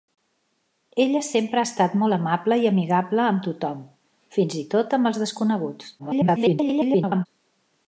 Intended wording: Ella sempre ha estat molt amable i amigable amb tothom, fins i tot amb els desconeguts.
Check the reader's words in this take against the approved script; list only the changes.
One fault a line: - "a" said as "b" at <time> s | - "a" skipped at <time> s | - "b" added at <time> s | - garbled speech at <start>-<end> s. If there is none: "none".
- garbled speech at 6.0-7.3 s